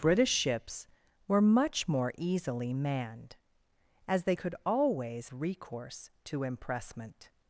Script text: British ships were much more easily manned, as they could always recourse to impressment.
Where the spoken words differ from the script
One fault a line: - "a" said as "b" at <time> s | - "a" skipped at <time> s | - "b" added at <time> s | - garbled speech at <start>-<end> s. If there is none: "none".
none